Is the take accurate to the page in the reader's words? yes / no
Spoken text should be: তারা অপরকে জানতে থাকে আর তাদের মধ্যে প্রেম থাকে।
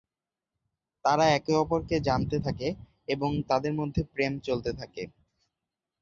no